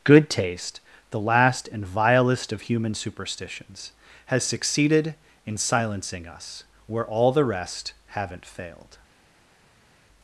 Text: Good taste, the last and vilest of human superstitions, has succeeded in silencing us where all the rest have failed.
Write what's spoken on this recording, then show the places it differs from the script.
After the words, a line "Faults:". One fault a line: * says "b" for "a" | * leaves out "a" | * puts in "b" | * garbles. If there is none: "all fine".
Good taste, the last and vilest of human superstitions, has succeeded in silencing us where all the rest haven't failed.
Faults:
* says "haven't" for "have"